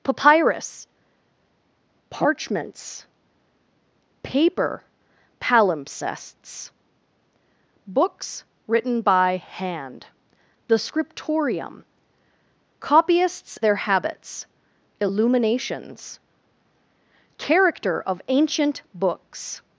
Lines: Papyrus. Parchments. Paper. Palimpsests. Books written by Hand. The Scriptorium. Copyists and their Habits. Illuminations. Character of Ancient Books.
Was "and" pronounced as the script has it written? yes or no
no